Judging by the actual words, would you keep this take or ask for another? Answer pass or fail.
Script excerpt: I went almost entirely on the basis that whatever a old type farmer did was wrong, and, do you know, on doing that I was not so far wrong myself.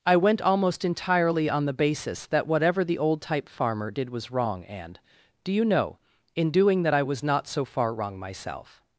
fail